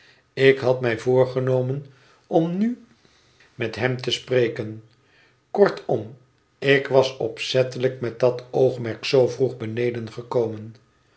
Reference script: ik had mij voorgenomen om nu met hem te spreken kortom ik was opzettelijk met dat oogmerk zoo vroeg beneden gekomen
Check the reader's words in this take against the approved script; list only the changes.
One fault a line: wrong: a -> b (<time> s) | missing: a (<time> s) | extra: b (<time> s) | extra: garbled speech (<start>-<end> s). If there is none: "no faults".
no faults